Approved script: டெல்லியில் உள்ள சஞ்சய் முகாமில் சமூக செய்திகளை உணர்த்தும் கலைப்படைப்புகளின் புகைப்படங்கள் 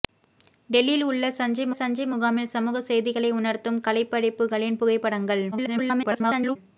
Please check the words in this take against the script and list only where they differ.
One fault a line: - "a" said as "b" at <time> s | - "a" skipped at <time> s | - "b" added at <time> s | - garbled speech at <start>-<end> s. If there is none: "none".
- "சஞ்சய்" added at 1.7 s
- garbled speech at 5.5-6.6 s